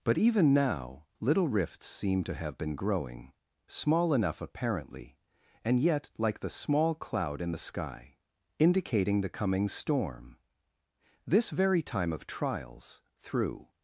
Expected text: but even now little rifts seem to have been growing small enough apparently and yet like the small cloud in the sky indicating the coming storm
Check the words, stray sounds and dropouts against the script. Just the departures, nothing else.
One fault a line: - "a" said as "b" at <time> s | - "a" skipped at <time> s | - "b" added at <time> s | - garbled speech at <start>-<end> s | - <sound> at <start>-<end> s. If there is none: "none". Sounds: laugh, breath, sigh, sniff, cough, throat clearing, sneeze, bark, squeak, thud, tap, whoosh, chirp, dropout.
- "this very time of trials through" added at 11.3 s